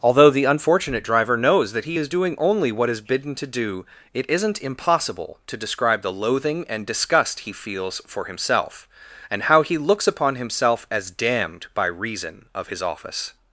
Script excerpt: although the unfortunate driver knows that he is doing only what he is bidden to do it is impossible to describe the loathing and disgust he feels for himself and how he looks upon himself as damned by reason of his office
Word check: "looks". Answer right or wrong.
right